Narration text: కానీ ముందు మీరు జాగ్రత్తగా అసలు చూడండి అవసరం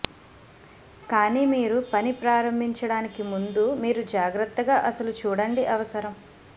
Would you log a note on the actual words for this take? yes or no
yes